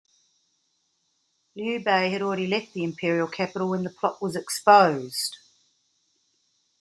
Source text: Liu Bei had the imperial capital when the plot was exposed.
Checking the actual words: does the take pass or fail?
fail